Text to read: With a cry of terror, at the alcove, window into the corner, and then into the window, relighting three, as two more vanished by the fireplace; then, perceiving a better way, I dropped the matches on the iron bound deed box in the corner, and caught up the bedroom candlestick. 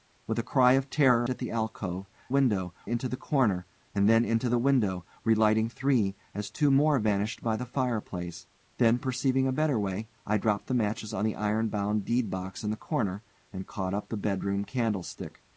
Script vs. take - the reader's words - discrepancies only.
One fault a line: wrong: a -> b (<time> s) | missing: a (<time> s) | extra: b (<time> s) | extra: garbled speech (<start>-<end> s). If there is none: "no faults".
no faults